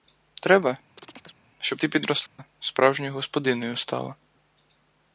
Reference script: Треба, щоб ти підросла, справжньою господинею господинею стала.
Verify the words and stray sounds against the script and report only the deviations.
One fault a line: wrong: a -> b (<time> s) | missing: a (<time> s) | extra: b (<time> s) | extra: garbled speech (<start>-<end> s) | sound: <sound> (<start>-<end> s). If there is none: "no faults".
sound: chirp (1.0-1.4 s)
sound: dropout (2.3-2.4 s)
missing: господинею (3.8 s)